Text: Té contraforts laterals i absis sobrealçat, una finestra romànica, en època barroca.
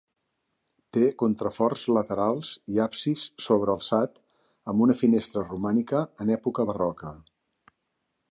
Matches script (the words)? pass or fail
fail